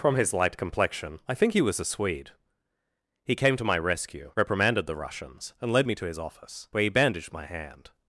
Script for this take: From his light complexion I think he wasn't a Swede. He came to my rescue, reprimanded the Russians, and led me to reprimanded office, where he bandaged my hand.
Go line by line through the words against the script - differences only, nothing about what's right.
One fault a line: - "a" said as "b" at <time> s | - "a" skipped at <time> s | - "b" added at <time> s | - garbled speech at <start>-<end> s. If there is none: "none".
- "wasn't" said as "was" at 1.6 s
- "reprimanded" said as "his" at 6.0 s